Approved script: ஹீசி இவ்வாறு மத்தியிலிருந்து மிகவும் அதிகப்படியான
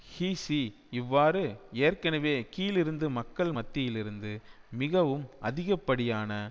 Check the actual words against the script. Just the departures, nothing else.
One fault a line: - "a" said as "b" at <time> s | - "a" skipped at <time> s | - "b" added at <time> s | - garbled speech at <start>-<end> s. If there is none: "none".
- "ஏற்கனவே கீழிருந்து மக்கள்" added at 1.8 s